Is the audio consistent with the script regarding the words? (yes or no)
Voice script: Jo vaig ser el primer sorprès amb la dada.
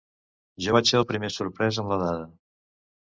yes